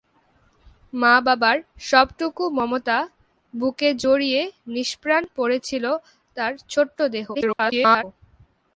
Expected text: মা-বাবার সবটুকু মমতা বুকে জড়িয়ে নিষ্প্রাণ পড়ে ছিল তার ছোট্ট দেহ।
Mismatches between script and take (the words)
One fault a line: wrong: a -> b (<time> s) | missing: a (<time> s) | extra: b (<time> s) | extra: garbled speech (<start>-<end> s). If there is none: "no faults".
extra: garbled speech (7.3-8.0 s)